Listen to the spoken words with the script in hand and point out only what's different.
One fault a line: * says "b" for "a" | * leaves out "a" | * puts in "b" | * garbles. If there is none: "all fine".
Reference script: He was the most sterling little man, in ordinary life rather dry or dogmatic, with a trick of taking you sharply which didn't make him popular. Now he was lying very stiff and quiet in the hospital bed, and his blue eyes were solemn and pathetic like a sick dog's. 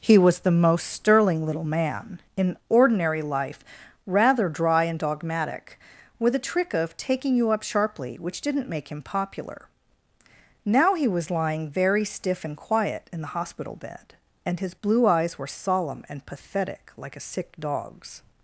* says "and" for "or"
* puts in "up"